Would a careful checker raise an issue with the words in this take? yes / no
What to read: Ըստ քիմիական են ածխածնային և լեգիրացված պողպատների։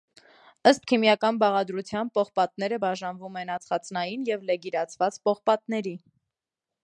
yes